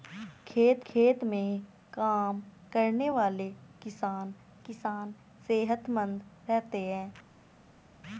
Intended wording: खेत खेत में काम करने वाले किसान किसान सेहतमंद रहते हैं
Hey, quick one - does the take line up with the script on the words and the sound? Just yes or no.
yes